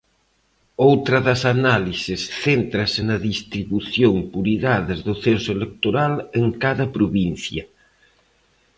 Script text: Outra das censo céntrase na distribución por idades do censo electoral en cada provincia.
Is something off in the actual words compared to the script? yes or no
yes